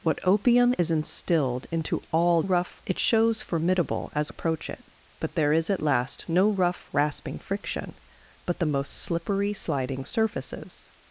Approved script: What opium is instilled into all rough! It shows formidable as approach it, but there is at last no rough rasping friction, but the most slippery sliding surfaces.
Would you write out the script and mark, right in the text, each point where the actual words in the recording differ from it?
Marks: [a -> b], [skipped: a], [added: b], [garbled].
What opium is instilled into all rough! It shows formidable as approach it, but there is at last no rough rasping friction, but the most slippery sliding surfaces.